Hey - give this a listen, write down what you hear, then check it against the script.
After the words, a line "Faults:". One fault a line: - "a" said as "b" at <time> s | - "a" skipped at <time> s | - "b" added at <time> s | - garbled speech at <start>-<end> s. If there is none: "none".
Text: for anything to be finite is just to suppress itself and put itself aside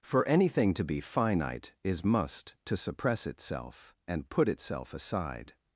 for anything to be finite is must to suppress itself and put itself aside
Faults:
- "just" said as "must" at 2.0 s